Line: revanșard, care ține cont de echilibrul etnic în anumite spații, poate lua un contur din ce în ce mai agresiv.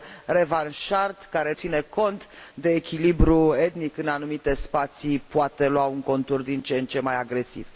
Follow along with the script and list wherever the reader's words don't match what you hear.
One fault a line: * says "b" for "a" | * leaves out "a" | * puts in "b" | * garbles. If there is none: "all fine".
all fine